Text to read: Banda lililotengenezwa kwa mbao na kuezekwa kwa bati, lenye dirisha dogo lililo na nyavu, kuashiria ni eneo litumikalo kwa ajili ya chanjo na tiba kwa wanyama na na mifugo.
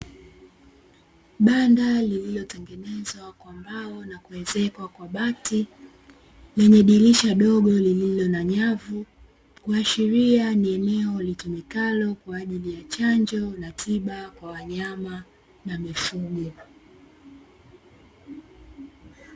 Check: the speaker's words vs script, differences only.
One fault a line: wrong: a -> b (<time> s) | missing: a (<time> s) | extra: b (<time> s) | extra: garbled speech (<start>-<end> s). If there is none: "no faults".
missing: na (15.8 s)